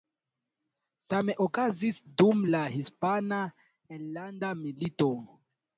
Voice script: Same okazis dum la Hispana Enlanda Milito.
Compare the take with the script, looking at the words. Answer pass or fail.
pass